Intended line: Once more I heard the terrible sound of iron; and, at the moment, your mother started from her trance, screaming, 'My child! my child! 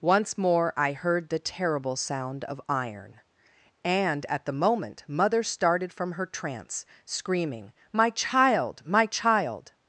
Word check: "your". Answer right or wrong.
wrong